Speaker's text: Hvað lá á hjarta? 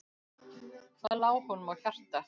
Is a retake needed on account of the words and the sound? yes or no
yes